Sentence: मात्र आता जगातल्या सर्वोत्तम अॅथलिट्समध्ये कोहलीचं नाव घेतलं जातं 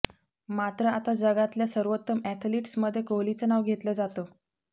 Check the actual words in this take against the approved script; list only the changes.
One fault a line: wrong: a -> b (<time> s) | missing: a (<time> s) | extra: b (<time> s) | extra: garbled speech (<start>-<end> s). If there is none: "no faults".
no faults